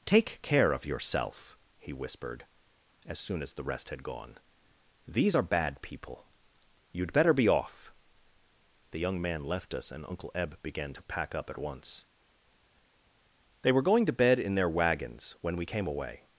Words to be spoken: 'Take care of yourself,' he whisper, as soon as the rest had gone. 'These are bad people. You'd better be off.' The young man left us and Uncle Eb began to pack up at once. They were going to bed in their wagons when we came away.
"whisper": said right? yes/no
no